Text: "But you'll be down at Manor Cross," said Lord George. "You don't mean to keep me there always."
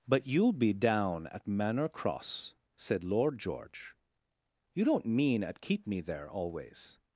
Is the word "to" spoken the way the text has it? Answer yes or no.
no